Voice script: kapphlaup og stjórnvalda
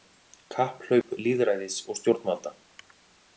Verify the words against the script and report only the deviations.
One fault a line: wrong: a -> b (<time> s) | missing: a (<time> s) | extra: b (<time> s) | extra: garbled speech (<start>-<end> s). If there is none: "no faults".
extra: lýðræðis (1.3 s)